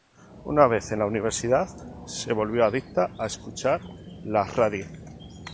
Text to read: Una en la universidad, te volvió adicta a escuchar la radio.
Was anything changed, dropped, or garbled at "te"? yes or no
yes